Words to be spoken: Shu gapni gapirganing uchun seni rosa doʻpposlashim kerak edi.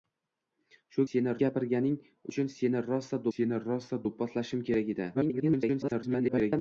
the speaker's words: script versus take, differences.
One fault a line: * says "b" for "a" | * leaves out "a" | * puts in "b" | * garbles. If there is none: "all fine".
* says "seni" for "gapni"
* puts in "seni rosa"
* garbles